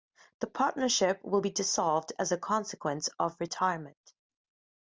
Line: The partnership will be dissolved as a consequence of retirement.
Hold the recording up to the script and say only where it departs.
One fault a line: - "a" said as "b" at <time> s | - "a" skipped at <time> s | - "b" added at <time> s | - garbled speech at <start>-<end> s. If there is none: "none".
none